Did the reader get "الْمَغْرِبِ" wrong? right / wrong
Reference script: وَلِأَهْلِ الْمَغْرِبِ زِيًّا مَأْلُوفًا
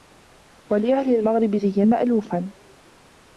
right